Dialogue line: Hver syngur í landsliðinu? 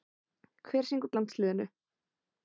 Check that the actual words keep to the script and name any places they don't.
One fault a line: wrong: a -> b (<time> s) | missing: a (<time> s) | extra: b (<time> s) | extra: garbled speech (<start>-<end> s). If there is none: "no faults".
no faults